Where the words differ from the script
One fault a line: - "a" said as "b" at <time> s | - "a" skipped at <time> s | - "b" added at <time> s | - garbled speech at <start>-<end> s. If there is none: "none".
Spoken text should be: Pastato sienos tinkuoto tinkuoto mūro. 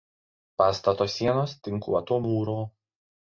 - "tinkuoto" skipped at 2.2 s